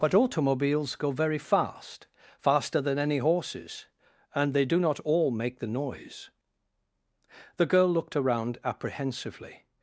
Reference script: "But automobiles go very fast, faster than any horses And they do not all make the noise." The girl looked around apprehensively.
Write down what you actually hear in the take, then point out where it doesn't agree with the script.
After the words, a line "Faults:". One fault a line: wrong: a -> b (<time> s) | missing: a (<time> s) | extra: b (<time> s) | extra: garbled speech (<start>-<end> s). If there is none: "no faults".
"But automobiles go very fast, faster than any horses And they do not all make the noise." The girl looked around apprehensively.
Faults:
no faults